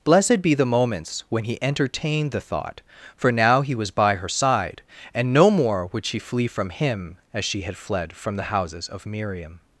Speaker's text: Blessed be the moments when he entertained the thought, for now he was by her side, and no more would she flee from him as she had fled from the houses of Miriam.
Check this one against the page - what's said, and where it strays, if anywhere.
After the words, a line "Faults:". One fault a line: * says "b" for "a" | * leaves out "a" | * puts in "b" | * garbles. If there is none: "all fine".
Blessed be the moments when he entertained the thought, for now he was by her side, and no more would she flee from him as she had fled from the houses of Miriam.
Faults:
all fine